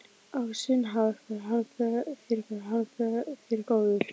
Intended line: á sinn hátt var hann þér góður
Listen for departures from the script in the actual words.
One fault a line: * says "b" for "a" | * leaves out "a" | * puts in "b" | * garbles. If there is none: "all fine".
* puts in "var hann þér"